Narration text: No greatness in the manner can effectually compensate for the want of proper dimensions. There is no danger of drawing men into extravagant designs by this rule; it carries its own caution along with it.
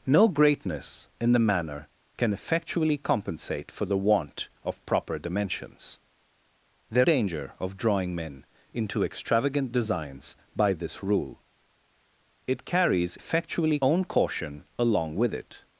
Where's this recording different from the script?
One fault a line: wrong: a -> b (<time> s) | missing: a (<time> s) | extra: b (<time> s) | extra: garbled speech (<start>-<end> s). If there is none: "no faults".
missing: is no (7.1 s)
wrong: its -> effectually (13.1 s)